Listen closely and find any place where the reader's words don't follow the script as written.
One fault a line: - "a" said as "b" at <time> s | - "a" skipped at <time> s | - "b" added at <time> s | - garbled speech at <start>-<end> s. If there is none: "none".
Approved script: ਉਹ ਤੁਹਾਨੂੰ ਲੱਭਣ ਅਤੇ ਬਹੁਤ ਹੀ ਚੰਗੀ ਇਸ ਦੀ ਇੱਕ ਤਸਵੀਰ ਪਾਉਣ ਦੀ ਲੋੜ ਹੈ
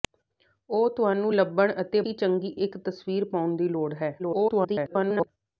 - "ਬਹੁਤ" skipped at 2.0 s
- "ਇਸ ਦੀ" skipped at 2.5 s
- garbled speech at 4.2-5.3 s